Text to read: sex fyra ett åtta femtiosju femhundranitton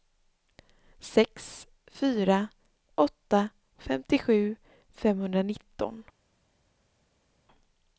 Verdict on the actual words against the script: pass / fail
fail